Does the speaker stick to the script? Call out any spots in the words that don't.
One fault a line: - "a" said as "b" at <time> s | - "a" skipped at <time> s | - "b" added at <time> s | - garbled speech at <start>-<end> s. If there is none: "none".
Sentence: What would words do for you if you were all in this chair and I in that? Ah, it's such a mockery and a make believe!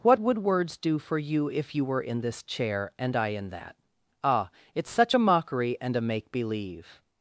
- "all" skipped at 2.0 s